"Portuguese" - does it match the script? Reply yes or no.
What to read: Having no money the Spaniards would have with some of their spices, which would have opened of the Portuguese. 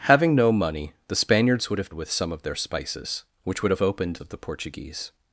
yes